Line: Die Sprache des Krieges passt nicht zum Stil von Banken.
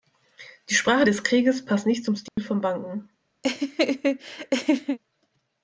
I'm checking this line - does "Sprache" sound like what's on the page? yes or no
yes